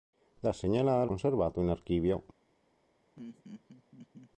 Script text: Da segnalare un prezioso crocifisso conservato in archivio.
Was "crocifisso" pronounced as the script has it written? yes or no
no